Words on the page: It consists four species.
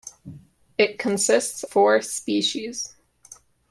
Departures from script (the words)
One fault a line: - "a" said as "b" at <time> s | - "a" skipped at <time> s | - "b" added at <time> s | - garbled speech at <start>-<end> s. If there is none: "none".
none